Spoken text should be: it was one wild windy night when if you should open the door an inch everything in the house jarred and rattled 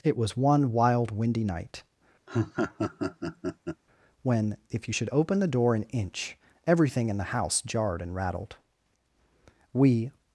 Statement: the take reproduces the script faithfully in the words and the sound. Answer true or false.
false